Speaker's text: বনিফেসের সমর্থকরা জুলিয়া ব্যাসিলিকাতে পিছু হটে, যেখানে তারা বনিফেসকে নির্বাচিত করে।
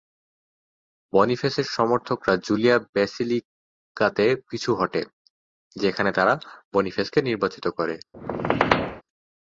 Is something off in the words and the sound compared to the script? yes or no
yes